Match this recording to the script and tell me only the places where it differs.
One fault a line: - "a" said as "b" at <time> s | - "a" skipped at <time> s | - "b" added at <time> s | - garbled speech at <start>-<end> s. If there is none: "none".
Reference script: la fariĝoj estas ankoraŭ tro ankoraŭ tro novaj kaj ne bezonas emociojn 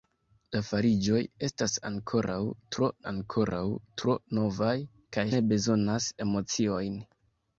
none